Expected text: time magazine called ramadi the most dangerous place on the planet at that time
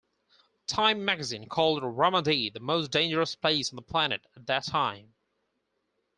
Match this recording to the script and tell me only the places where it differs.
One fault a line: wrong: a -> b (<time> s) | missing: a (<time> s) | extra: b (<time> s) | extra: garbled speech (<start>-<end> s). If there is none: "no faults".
no faults